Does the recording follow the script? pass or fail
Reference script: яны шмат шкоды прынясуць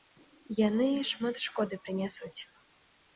pass